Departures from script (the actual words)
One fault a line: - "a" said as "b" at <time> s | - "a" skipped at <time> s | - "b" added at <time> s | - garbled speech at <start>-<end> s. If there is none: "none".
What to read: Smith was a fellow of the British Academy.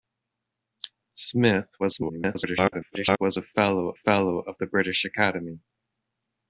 - garbled speech at 1.8-3.2 s
- "fellow" added at 3.9 s